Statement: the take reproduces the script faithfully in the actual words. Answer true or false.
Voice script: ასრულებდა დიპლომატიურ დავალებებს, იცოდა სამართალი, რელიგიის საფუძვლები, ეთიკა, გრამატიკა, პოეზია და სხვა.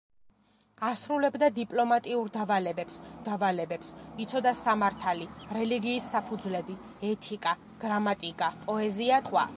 false